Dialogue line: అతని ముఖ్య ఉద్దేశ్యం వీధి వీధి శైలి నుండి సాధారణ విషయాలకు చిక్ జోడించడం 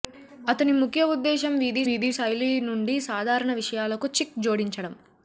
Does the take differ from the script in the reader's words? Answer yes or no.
no